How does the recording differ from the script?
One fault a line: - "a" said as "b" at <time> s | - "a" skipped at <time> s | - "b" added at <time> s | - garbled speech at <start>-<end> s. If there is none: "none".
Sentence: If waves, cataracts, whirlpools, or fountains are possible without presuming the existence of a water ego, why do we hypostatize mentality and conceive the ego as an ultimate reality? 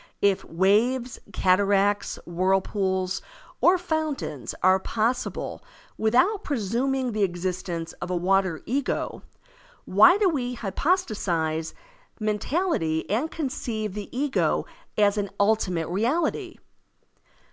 none